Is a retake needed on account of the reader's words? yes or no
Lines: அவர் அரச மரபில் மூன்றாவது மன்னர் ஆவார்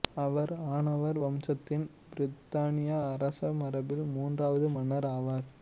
yes